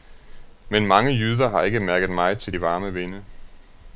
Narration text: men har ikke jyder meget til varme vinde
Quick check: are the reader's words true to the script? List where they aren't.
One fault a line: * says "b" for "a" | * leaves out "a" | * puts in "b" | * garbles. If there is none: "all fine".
* puts in "mange jyder"
* says "mærket" for "jyder"
* puts in "de"